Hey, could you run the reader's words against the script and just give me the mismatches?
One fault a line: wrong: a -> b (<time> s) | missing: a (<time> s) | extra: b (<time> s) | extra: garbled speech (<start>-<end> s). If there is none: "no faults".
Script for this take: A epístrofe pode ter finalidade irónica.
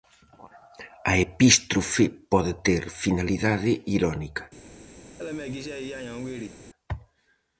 no faults